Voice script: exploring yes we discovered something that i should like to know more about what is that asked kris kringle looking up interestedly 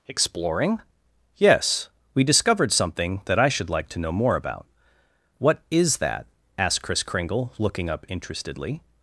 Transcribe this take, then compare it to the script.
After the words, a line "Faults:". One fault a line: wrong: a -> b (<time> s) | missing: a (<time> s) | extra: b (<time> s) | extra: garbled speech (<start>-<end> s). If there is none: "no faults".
exploring yes we discovered something that i should like to know more about what is that asked kris kringle looking up interestedly
Faults:
no faults